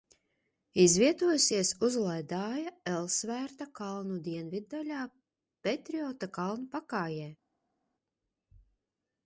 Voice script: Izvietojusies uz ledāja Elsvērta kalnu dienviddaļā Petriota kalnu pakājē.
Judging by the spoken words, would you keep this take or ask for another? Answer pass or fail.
pass